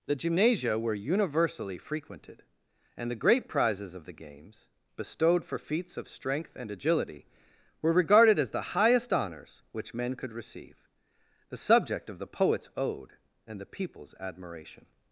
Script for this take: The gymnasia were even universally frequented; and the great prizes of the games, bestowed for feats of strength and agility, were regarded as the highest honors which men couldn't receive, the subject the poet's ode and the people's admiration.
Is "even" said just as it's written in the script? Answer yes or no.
no